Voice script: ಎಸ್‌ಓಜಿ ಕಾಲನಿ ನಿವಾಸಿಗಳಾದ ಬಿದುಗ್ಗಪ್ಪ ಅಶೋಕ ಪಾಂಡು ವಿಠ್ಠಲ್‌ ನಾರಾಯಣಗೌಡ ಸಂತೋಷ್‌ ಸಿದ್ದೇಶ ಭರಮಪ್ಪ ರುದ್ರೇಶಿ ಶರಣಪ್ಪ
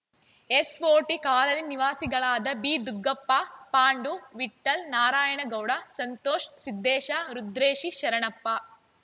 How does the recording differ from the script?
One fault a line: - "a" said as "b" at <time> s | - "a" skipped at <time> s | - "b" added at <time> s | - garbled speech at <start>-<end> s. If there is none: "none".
- "ಅಶೋಕ" skipped at 3.3 s
- "ಭರಮಪ್ಪ" skipped at 7.1 s